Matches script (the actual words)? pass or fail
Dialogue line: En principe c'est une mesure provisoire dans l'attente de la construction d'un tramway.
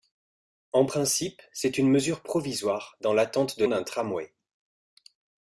fail